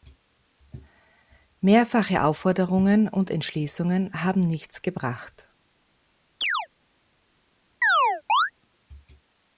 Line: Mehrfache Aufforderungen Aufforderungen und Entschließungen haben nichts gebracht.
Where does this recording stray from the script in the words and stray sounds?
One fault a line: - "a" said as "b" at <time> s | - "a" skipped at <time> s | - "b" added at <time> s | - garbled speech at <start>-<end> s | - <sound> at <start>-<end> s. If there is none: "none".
- "Aufforderungen" skipped at 3.1 s
- chirp at 6.4-6.7 s
- chirp at 7.8-8.5 s